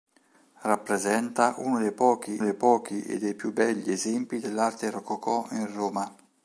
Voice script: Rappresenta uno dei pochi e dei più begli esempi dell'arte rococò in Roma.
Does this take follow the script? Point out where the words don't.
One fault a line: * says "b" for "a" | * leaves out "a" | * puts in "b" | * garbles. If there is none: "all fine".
* puts in "dei pochi"